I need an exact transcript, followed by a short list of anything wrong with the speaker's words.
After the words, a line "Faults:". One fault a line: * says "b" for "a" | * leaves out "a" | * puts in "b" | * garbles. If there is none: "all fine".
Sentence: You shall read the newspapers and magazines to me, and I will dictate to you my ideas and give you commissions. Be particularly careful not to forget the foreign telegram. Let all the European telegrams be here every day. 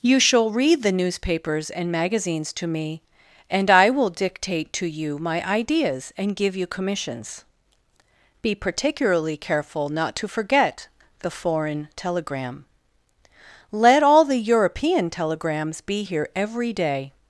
You shall read the newspapers and magazines to me, and I will dictate to you my ideas and give you commissions. Be particularly careful not to forget the foreign telegram. Let all the European telegrams be here every day.
Faults:
all fine